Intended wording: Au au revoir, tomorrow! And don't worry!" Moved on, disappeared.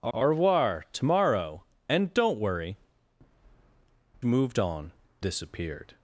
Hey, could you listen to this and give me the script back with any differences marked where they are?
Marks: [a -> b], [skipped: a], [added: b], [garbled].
Au au revoir, tomorrow! And don't worry!" Moved on, disappeared.